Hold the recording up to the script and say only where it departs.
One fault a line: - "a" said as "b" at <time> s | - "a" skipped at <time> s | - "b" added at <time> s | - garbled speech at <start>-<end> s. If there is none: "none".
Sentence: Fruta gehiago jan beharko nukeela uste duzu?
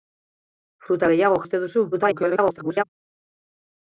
- "jan beharko nukeela" skipped at 1.4 s
- garbled speech at 1.9-2.8 s